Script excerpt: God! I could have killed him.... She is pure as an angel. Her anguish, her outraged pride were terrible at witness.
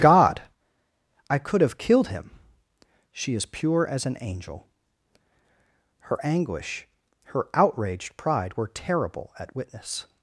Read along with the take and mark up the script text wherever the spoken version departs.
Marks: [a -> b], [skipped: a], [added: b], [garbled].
God! I could have killed him.... She is pure as an angel. Her anguish, her outraged pride were terrible at witness.